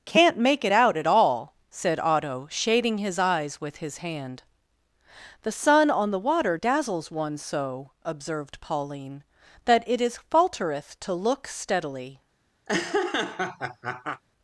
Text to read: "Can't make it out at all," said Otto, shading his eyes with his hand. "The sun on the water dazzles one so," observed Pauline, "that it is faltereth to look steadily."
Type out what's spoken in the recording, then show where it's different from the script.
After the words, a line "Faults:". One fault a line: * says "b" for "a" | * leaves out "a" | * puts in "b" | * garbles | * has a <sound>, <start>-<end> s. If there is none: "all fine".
"Can't make it out at all," said Otto, shading his eyes with his hand. "The sun on the water dazzles one so," observed Pauline, "that it is faltereth to look steadily."
Faults:
* has a laugh, 12.7-14.2 s